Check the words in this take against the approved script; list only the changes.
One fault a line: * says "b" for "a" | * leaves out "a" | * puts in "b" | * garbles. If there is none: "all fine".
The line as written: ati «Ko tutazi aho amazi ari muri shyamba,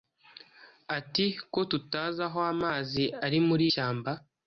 all fine